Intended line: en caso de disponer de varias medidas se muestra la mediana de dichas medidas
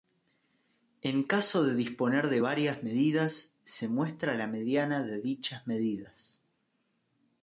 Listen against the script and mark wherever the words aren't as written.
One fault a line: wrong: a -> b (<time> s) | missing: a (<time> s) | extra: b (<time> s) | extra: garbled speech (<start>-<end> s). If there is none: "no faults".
no faults